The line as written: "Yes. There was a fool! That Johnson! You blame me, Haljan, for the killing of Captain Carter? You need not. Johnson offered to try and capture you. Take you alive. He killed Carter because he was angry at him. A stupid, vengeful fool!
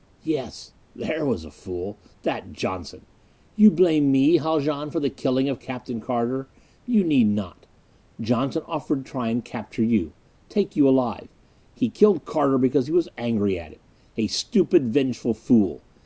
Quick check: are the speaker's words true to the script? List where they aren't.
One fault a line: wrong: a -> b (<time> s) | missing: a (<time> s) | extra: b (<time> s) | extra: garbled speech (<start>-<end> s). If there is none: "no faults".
no faults